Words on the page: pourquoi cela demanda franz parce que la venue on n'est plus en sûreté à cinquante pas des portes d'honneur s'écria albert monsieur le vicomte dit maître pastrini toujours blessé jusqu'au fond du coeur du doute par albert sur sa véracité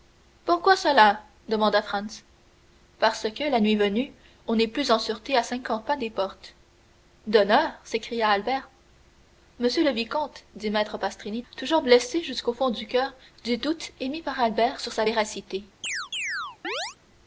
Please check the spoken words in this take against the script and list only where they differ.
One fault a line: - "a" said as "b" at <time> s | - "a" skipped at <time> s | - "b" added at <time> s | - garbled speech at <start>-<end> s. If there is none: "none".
- "nuit" added at 3.6 s
- "émis" added at 14.0 s